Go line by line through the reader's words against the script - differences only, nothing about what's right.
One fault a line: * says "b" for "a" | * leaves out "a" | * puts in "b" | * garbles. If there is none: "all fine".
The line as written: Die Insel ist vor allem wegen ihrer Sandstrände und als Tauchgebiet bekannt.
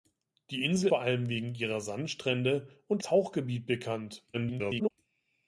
* leaves out "ist"
* leaves out "als"
* garbles